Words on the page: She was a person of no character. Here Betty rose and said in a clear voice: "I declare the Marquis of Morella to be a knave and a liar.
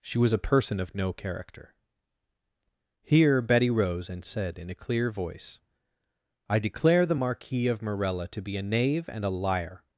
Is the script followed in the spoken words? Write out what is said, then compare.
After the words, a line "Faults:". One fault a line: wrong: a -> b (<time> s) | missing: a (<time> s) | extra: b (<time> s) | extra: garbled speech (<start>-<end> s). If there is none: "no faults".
She was a person of no character. Here Betty rose and said in a clear voice: "I declare the Marquis of Morella to be a knave and a liar.
Faults:
no faults